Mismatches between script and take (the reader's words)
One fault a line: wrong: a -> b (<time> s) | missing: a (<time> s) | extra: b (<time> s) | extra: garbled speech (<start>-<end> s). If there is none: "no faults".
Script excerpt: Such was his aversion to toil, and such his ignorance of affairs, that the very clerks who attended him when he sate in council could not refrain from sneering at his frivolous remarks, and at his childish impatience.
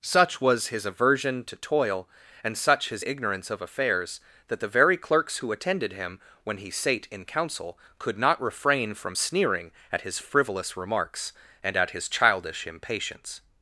no faults